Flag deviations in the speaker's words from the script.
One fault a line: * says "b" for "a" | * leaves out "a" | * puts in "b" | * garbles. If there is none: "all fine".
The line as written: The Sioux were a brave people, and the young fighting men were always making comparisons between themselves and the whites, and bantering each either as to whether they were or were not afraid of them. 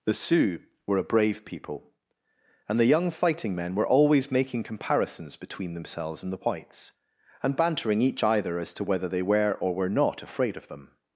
all fine